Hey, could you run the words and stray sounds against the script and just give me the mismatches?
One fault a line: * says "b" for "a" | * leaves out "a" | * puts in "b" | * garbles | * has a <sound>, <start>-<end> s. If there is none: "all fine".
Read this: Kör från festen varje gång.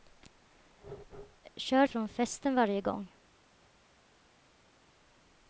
all fine